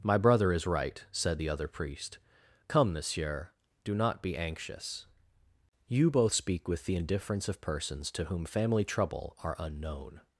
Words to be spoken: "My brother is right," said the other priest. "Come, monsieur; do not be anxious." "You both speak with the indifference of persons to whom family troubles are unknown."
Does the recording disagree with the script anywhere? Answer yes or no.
yes